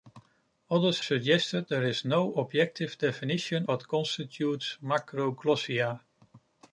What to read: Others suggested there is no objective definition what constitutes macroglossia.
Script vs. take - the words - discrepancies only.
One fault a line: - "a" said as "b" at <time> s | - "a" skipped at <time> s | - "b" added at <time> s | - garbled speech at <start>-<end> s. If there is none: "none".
none